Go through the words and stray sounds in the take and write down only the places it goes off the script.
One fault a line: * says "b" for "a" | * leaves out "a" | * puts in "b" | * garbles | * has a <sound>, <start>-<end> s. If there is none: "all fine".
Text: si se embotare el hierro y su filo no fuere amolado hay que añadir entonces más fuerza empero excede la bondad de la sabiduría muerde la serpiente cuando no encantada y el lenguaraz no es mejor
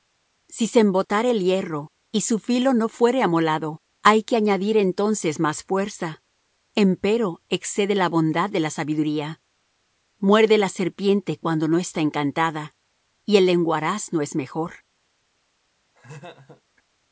* puts in "está"
* has a laugh, 15.9-16.6 s